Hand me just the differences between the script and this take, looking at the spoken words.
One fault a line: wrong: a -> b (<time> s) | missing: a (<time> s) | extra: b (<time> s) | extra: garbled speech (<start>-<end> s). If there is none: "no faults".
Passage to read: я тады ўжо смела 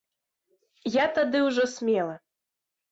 no faults